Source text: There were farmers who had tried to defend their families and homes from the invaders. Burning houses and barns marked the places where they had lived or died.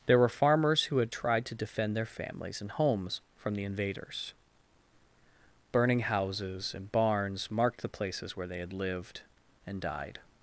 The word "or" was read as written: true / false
false